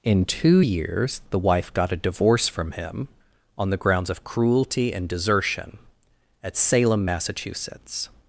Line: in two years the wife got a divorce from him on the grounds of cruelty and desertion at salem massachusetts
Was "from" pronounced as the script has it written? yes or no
yes